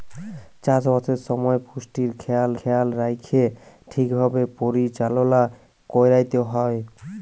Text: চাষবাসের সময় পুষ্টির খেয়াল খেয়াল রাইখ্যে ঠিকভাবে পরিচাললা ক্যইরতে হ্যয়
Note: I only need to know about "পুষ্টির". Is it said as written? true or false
true